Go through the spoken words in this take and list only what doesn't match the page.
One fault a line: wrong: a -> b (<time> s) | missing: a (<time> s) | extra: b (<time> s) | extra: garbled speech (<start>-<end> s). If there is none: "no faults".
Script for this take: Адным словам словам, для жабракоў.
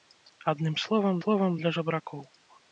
no faults